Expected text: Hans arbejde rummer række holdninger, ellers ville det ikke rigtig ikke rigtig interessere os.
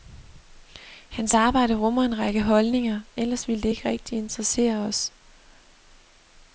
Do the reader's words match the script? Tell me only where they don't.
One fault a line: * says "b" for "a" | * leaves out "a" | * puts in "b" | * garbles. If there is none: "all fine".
* puts in "en"
* leaves out "ikke rigtig"